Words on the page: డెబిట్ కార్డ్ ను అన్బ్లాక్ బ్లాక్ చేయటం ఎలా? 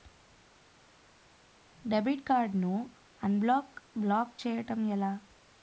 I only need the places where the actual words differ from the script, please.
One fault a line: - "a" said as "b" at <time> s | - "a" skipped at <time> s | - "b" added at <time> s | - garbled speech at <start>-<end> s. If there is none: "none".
none